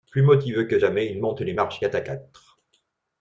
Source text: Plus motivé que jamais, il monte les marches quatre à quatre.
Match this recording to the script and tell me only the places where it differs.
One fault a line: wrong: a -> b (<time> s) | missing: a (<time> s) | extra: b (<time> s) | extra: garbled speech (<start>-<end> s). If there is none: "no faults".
no faults